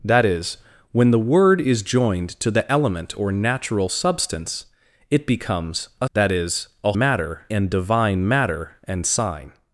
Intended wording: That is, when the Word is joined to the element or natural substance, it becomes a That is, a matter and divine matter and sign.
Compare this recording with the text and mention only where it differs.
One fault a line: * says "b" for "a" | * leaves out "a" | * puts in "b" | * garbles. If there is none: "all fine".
all fine